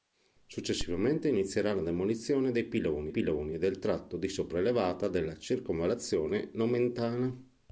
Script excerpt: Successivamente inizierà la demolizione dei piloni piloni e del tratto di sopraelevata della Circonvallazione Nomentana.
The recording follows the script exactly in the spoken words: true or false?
true